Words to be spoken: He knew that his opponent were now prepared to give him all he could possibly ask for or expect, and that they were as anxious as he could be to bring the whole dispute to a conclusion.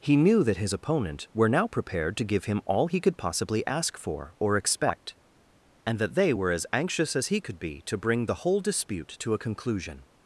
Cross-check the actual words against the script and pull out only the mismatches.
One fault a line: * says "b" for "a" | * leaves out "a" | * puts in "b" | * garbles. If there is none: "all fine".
all fine